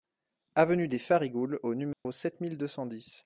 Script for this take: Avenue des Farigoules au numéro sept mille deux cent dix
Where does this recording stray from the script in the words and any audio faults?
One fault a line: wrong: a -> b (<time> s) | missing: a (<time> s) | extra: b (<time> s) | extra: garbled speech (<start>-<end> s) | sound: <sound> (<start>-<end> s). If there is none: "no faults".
sound: dropout (1.9-2.1 s)